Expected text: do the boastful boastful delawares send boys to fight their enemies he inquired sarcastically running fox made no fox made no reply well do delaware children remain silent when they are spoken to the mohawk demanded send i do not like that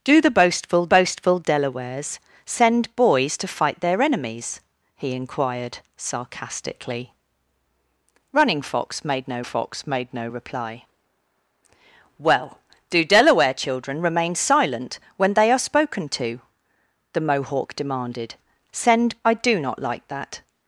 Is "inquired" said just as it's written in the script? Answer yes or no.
yes